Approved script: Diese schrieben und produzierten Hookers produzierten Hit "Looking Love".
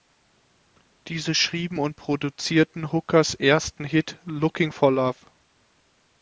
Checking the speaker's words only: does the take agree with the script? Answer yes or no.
no